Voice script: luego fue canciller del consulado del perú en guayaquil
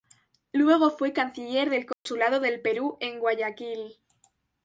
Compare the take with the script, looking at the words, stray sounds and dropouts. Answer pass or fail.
fail